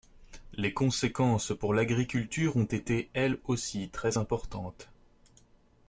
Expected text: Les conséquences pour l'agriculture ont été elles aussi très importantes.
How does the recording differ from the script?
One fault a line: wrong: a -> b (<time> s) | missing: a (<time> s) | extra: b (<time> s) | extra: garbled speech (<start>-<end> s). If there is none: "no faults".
no faults